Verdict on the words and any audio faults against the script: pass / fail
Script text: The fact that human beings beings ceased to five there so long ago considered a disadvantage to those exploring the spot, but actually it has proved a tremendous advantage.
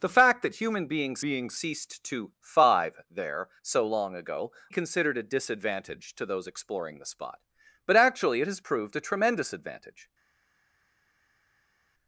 pass